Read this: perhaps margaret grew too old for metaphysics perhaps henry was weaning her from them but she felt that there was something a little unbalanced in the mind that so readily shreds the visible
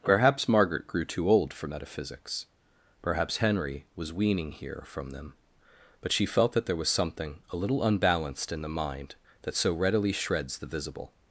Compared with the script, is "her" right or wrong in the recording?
wrong